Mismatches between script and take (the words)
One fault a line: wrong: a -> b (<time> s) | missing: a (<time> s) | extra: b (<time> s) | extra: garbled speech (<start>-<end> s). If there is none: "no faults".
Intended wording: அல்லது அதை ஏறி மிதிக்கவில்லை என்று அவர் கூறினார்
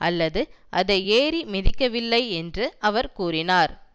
no faults